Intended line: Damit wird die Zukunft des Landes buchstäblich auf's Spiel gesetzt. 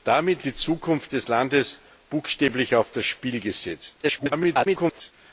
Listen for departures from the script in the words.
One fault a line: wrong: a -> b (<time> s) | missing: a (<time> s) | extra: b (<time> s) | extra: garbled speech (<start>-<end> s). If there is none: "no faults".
missing: wird (0.5 s)
extra: garbled speech (4.0-5.1 s)